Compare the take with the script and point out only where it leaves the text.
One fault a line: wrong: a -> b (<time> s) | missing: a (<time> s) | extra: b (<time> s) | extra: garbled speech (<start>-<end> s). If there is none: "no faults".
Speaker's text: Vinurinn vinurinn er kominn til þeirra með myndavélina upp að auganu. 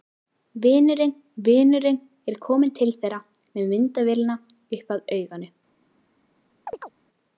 no faults